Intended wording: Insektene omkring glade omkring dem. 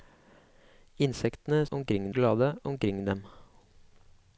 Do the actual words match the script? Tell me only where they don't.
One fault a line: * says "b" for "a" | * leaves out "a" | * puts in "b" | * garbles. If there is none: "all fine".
all fine